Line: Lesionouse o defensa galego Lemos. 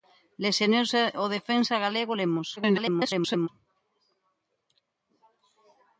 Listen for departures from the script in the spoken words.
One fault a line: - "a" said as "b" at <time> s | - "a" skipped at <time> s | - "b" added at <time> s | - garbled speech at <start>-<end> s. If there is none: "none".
- garbled speech at 2.6-3.5 s